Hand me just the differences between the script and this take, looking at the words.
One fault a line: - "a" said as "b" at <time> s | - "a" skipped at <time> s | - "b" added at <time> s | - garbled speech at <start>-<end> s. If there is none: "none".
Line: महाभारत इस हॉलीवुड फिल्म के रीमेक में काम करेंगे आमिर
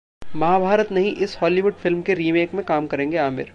- "नहीं" added at 0.9 s